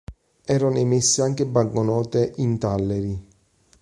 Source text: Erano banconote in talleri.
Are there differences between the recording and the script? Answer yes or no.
yes